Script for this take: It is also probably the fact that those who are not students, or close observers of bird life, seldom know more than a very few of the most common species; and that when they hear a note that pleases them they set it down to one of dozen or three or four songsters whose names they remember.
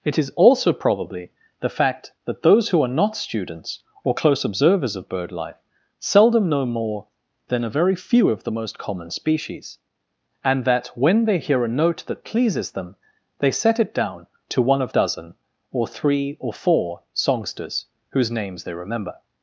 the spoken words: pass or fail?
pass